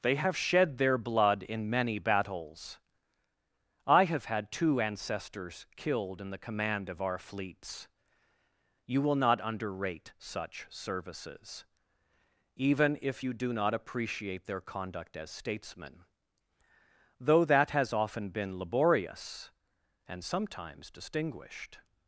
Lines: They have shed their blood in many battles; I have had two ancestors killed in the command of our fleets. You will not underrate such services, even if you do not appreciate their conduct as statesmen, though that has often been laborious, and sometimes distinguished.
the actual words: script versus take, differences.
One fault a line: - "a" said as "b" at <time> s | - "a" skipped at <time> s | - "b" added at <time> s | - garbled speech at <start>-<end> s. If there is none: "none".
none